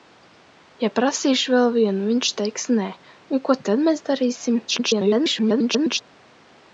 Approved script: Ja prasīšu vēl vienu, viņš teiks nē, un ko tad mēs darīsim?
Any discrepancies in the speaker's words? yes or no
yes